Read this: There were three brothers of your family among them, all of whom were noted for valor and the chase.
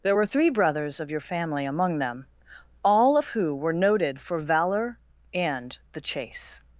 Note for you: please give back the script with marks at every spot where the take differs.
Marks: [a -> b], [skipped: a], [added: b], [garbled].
There were three brothers of your family among them, all of [whom -> who] were noted for valor and the chase.